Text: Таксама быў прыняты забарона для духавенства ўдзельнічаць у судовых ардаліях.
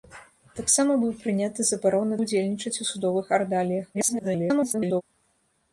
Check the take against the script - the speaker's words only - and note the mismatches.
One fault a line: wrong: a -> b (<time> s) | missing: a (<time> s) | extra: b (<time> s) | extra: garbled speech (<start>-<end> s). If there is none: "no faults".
missing: для духавенства (2.2 s)
extra: garbled speech (3.9-5.0 s)